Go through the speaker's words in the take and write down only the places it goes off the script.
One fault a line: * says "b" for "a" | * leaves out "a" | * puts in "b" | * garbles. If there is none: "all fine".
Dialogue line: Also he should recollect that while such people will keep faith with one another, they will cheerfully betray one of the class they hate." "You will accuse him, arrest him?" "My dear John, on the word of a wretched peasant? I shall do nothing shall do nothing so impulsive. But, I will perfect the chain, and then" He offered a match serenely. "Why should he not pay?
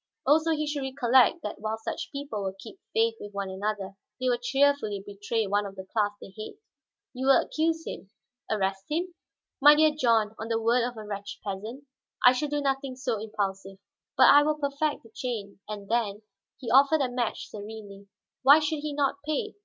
* leaves out "shall do nothing"